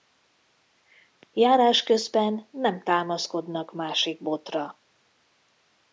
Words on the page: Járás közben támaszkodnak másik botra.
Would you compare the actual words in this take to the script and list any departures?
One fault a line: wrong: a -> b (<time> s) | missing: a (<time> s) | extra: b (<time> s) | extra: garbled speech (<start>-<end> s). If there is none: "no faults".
extra: nem (2.5 s)